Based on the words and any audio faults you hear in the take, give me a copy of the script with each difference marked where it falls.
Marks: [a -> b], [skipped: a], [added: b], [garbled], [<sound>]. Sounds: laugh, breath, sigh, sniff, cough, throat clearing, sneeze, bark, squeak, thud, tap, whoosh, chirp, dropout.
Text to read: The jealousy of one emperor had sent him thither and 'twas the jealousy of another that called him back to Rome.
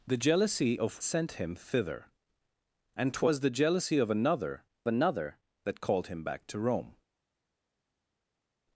The jealousy of [skipped: one emperor had] sent him thither and 'twas the jealousy of another [added: another] that called him back to Rome.